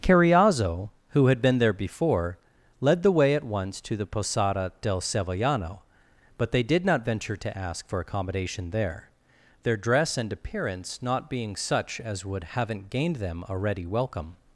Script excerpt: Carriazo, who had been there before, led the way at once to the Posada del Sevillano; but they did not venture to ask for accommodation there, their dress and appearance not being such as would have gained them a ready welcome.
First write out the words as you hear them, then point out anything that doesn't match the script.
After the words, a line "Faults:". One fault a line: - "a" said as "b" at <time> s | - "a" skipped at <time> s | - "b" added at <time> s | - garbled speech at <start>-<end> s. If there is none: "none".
Carriazo, who had been there before, led the way at once to the Posada del Sevillano; but they did not venture to ask for accommodation there, their dress and appearance not being such as would haven't gained them a ready welcome.
Faults:
- "have" said as "haven't" at 12.4 s